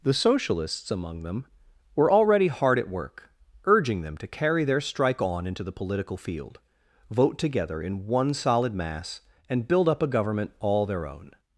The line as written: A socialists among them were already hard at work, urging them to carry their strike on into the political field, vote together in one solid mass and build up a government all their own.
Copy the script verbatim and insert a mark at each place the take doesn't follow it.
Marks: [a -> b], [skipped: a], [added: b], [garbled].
[A -> The] socialists among them were already hard at work, urging them to carry their strike on into the political field, vote together in one solid mass and build up a government all their own.